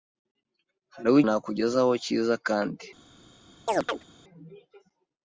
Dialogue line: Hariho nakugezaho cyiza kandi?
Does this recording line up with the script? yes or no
yes